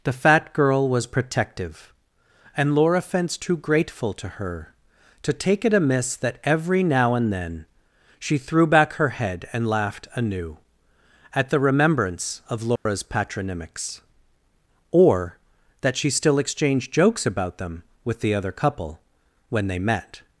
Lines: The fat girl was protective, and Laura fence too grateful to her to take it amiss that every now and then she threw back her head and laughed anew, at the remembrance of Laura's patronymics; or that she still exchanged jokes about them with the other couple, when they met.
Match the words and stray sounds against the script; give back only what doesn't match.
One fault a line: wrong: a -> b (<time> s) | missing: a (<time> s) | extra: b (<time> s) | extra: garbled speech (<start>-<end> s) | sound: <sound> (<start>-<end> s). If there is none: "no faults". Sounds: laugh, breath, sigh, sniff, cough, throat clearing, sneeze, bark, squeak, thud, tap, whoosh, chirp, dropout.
sound: dropout (12.8-12.9 s)